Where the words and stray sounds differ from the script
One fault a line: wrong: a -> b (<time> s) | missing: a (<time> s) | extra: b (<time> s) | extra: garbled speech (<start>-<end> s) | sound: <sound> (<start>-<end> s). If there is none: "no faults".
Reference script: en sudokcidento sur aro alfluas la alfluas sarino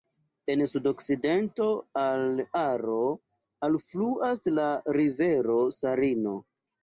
wrong: sur -> al (2.0 s)
wrong: alfluas -> rivero (5.0 s)